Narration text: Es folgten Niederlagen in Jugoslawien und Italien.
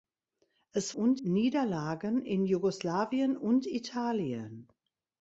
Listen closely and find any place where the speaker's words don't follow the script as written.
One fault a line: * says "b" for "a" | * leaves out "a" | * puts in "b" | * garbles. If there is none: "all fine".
* says "und" for "folgten"